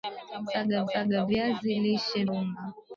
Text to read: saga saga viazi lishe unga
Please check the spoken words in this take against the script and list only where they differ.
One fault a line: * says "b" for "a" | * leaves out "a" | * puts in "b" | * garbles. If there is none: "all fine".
all fine